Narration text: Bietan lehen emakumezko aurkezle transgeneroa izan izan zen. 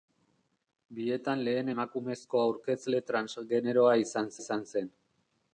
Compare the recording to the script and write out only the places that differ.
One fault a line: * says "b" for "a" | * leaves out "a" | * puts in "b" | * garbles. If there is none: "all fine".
all fine